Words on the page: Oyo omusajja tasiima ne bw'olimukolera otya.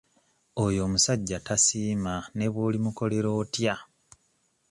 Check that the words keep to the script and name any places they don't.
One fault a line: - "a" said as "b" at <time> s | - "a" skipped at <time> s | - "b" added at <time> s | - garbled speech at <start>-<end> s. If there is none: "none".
none